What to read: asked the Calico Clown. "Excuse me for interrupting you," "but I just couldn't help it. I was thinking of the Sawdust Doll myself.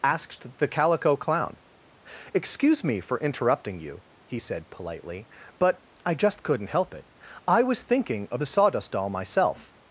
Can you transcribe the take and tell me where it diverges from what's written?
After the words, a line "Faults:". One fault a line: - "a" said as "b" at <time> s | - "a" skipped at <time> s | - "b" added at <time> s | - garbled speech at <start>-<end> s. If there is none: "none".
asked the Calico Clown. "Excuse me for interrupting you," he said politely, "but I just couldn't help it. I was thinking of the Sawdust Doll myself.
Faults:
- "he said politely" added at 4.3 s